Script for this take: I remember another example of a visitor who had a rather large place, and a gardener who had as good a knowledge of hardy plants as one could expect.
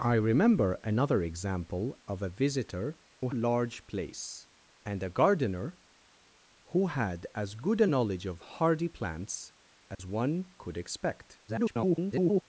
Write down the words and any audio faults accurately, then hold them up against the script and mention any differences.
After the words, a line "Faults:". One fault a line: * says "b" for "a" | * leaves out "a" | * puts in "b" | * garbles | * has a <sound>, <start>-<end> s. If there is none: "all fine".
I remember another example of a visitor who large place, and a gardener who had as good a knowledge of hardy plants as one could expect. [garbled]
Faults:
* leaves out "had a rather"
* has a dropout, 9.9-10.0 s
* garbles